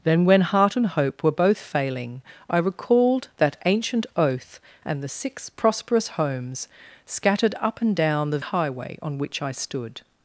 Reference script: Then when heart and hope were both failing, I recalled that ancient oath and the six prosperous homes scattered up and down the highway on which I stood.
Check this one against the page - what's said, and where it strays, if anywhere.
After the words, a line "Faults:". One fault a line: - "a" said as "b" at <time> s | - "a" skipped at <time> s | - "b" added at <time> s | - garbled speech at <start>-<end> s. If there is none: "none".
Then when heart and hope were both failing, I recalled that ancient oath and the six prosperous homes scattered up and down the highway on which I stood.
Faults:
none